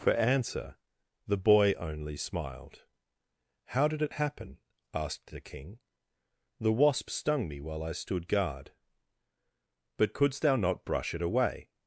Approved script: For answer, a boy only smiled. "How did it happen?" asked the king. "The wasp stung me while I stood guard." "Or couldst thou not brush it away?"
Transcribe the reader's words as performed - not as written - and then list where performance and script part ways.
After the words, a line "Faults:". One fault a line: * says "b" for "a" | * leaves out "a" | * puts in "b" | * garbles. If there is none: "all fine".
For answer, the boy only smiled. "How did it happen?" asked the king. "The wasp stung me while I stood guard." "But couldst thou not brush it away?"
Faults:
* says "the" for "a"
* says "But" for "Or"